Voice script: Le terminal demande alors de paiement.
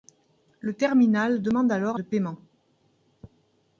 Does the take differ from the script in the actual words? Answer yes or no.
no